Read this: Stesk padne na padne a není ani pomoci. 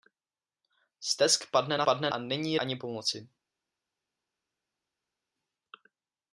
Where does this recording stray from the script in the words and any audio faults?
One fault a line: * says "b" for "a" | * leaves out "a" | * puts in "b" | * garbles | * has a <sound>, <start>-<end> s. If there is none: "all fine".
all fine